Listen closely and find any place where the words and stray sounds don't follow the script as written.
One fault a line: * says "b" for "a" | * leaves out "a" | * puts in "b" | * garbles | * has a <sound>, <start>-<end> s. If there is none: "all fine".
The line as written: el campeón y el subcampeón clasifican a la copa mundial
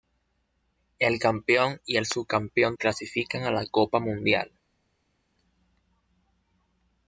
all fine